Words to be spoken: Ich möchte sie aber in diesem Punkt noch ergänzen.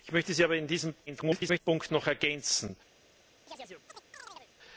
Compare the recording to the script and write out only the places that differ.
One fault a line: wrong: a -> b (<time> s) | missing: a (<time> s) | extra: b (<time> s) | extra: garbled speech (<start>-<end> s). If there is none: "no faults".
extra: garbled speech (1.1-1.6 s)